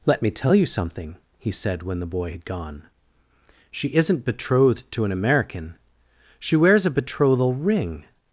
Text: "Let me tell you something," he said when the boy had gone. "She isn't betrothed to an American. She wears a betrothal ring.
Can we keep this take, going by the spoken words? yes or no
yes